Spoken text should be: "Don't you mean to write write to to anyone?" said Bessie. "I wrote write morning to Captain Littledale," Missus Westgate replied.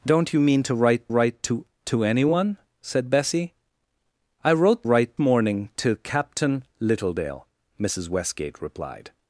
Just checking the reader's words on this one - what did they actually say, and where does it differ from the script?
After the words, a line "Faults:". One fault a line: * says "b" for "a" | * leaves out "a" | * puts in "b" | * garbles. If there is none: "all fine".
"Don't you mean to write write to to anyone?" said Bessie. "I wrote write morning to Captain Littledale," Missus Westgate replied.
Faults:
all fine